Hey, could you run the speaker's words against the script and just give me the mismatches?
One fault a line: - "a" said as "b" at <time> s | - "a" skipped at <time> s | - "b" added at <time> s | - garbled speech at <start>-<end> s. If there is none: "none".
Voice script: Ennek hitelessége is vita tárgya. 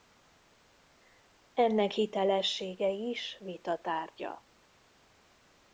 none